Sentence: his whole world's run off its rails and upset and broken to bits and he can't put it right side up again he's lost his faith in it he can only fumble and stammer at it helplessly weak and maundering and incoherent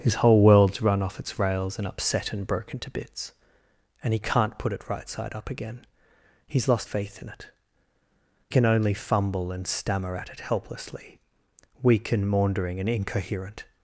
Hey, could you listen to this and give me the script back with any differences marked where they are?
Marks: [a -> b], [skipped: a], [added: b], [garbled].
his whole world's run off its rails and upset and broken to bits and he can't put it right side up again he's lost [skipped: his] faith in it [skipped: he] can only fumble and stammer at it helplessly weak and maundering and incoherent